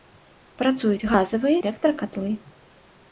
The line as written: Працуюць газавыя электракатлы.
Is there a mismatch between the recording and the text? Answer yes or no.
no